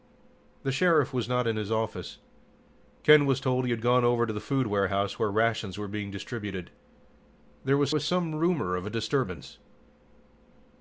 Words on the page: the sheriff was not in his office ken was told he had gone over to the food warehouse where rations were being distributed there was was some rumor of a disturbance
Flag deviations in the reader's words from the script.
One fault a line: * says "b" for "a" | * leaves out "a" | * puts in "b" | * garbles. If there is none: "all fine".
all fine